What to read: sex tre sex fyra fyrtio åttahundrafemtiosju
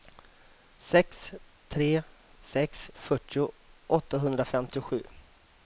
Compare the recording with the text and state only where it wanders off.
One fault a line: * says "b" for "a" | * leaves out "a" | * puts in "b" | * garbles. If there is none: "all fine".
* leaves out "fyra"